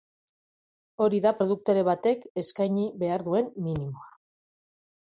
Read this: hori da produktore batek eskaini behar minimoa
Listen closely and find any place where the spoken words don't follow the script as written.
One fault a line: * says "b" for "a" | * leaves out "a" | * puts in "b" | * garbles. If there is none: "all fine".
* puts in "duen"